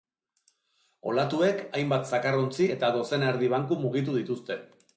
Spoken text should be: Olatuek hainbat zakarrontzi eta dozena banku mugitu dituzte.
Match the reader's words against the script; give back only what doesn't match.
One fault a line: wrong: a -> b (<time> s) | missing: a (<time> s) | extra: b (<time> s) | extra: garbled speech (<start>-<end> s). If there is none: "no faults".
extra: erdi (3.3 s)